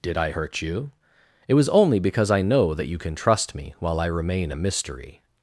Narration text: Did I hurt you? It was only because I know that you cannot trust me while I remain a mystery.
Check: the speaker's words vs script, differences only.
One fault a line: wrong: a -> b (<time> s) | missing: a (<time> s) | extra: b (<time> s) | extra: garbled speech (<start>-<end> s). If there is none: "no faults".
wrong: cannot -> can (3.0 s)